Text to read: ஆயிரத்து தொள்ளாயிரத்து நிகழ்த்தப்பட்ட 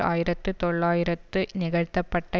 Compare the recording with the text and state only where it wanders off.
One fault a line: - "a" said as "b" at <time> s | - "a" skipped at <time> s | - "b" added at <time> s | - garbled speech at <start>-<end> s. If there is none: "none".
none